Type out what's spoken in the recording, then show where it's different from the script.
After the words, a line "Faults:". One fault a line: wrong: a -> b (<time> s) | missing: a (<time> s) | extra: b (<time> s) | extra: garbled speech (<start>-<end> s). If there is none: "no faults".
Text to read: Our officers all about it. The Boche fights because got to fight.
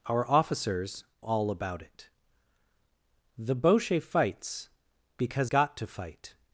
Our officers all about it. The Boche fights because got to fight.
Faults:
no faults